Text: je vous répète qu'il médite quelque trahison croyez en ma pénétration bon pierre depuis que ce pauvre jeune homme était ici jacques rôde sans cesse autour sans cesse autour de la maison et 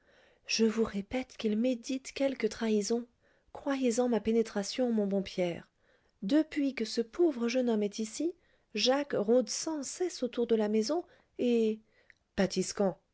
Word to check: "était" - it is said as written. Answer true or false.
false